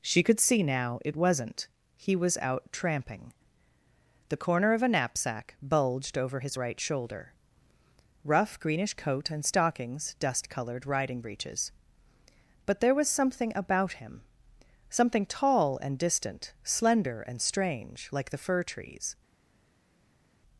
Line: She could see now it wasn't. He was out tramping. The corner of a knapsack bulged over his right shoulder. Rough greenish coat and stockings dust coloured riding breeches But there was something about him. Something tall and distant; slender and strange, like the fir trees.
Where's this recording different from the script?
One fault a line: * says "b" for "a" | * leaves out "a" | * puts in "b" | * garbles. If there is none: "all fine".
all fine